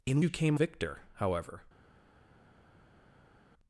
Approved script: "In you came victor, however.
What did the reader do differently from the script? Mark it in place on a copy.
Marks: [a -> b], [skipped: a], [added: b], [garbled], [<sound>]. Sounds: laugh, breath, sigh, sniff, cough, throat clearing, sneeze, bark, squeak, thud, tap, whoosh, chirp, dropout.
"In you came victor, however.